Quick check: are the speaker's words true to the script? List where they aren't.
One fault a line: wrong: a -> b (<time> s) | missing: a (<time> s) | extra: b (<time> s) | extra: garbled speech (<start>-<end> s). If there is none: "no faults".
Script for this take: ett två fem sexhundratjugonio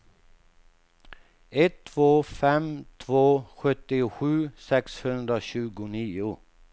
extra: två sjuttiosju (3.0 s)